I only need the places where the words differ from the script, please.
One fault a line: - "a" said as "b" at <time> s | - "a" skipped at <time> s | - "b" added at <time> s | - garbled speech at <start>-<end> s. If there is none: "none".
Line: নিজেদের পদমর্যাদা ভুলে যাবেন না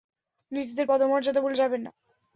none